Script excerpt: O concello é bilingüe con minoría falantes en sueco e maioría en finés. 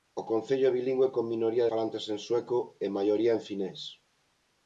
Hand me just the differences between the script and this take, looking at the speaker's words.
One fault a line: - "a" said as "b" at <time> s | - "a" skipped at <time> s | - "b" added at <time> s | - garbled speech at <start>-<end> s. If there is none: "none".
none